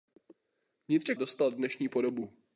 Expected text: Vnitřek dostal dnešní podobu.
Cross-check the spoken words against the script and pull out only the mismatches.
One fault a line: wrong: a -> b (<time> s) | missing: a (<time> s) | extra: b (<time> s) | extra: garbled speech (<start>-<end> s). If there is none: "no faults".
no faults